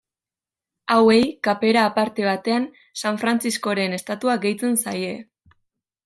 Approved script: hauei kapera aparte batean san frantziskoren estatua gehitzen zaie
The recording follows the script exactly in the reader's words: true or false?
true